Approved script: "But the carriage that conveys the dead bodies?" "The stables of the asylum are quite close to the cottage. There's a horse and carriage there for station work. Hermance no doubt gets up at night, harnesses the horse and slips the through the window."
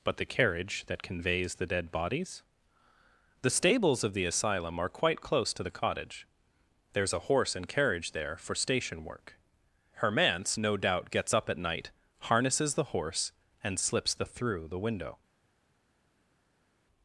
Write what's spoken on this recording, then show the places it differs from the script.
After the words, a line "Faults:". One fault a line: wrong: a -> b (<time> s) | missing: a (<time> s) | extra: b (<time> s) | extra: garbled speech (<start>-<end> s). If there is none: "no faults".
"But the carriage that conveys the dead bodies?" "The stables of the asylum are quite close to the cottage. There's a horse and carriage there for station work. Hermance no doubt gets up at night, harnesses the horse and slips the through the window."
Faults:
no faults